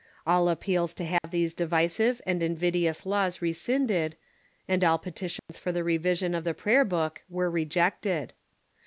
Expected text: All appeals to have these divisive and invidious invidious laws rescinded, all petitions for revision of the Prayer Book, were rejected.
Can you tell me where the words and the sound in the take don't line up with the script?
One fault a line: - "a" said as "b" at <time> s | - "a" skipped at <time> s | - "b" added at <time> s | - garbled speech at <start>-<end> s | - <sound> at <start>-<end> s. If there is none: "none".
- dropout at 1.2-1.2 s
- "invidious" skipped at 3.0 s
- "and" added at 4.7 s
- dropout at 5.4-5.5 s
- "the" added at 5.7 s